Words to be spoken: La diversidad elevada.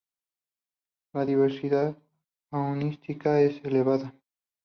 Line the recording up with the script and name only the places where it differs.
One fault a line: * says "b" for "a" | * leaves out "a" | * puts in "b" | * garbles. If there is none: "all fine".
* puts in "faunística es"